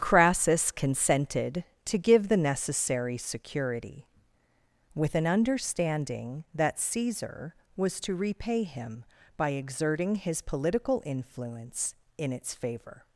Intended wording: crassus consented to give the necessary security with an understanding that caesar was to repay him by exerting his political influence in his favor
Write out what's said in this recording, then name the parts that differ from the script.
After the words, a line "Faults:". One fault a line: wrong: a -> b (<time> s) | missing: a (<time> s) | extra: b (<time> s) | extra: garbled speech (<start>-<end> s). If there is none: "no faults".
crassus consented to give the necessary security with an understanding that caesar was to repay him by exerting his political influence in its favor
Faults:
wrong: his -> its (12.3 s)